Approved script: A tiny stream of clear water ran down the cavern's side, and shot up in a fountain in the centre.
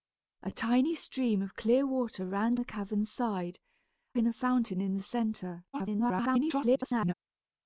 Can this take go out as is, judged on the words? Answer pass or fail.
fail